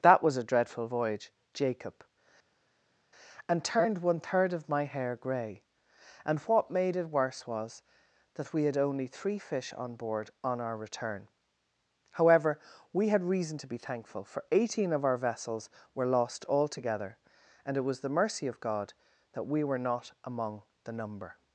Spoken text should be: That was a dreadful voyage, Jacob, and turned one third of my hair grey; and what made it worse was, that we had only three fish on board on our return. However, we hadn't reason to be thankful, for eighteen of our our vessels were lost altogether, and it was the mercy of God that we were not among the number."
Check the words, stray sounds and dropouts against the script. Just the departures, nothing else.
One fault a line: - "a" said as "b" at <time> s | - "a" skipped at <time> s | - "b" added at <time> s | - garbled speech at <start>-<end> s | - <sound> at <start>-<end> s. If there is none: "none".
- "hadn't" said as "had" at 13.1 s
- "our" skipped at 15.2 s